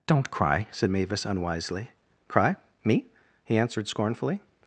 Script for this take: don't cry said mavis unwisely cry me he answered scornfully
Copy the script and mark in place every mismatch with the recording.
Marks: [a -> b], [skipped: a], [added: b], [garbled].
don't cry said mavis unwisely cry me he answered scornfully